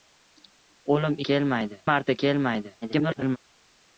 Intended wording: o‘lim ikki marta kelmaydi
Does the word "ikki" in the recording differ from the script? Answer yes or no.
yes